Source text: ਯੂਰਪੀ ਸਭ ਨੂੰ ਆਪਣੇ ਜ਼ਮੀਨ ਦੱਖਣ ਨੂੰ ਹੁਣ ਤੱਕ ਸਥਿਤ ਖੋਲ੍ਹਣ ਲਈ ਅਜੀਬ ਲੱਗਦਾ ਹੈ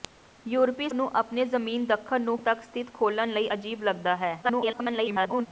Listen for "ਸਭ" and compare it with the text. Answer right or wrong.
wrong